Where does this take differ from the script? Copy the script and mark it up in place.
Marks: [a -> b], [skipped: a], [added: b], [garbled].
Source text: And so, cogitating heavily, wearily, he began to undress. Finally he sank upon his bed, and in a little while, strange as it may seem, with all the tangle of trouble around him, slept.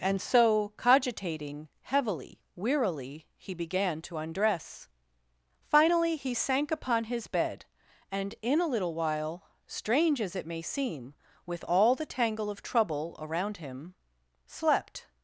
And so, cogitating heavily, wearily, he began to undress. Finally he sank upon his bed, and in a little while, strange as it may seem, with all the tangle of trouble around him, slept.